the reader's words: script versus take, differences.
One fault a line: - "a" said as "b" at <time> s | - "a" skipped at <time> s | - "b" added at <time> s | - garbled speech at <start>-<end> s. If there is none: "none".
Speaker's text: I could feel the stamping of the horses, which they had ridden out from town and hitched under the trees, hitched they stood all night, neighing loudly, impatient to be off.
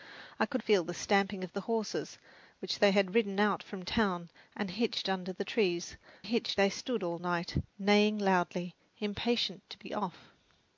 none